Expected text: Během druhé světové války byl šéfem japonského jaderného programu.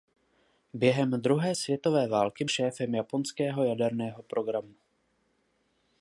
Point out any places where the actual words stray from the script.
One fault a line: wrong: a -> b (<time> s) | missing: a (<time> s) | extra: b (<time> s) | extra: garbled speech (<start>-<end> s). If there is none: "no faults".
missing: byl (2.4 s)